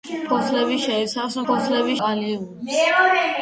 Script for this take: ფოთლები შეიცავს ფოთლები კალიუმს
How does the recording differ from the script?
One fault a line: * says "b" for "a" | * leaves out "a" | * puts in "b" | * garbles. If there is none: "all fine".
all fine